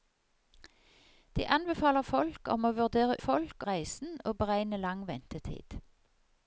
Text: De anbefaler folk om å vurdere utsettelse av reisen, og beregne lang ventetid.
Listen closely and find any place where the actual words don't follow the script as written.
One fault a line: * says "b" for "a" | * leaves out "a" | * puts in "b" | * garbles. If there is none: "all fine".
* says "folk" for "utsettelse"